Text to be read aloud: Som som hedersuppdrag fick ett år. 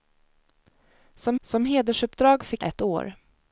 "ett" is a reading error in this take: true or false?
false